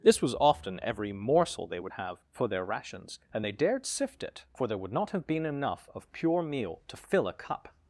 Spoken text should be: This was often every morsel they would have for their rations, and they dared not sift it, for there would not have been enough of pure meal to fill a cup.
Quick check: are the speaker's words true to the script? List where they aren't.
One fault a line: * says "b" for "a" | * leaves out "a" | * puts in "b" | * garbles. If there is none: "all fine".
* leaves out "not"